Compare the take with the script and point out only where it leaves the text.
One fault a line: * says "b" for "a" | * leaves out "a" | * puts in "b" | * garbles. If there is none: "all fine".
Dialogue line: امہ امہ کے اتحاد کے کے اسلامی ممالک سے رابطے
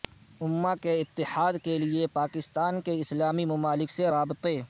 * leaves out "امہ"
* puts in "لیے پاکستان"